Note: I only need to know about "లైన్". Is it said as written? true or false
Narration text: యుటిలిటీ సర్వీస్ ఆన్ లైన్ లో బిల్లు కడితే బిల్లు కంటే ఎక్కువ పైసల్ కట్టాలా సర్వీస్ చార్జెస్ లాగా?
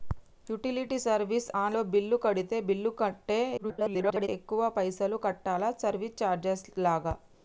false